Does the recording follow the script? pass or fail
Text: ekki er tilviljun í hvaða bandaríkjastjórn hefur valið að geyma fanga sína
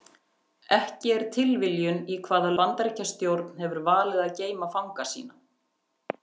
pass